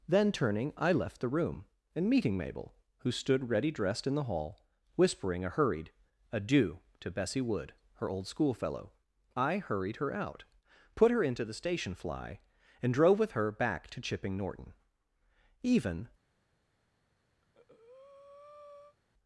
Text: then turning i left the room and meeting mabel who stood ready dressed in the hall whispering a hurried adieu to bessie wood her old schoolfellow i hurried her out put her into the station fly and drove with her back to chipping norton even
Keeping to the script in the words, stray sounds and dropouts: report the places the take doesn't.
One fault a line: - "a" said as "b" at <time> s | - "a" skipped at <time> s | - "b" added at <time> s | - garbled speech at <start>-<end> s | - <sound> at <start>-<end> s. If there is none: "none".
- breath at 17.4-19.0 s